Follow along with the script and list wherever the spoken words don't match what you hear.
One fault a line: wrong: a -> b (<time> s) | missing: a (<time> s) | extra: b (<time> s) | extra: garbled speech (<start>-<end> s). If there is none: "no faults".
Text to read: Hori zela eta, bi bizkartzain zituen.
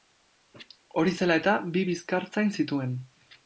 no faults